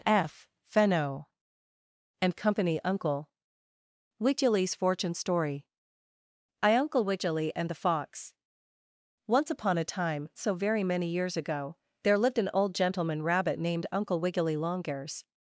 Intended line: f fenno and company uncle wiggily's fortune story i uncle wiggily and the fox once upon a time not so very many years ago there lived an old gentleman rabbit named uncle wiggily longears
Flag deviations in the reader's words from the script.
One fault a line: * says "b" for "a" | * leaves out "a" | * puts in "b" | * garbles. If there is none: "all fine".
* leaves out "not"